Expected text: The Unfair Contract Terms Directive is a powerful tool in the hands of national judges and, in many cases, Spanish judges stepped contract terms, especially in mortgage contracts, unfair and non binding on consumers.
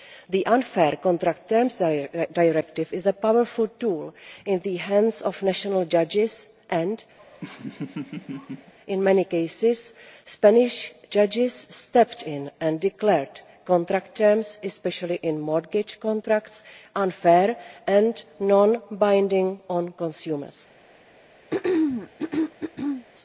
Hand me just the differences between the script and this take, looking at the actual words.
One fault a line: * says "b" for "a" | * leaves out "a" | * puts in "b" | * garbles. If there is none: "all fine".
* puts in "in and declared"